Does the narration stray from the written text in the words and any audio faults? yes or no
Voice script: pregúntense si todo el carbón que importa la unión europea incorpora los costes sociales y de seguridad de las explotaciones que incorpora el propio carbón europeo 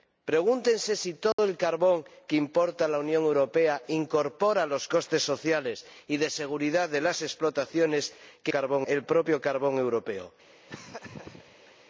yes